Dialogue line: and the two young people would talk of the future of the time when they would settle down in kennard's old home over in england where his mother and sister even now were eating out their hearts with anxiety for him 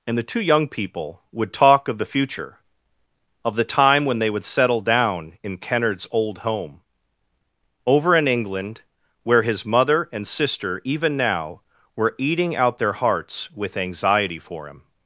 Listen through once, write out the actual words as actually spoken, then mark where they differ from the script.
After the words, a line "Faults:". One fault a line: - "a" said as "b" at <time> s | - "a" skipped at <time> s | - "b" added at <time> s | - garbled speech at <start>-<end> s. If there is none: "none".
and the two young people would talk of the future of the time when they would settle down in kennard's old home over in england where his mother and sister even now were eating out their hearts with anxiety for him
Faults:
none